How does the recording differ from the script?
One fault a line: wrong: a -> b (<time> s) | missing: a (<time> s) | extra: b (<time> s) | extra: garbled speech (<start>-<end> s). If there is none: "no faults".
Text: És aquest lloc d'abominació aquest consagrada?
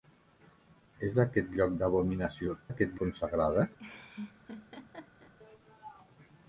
no faults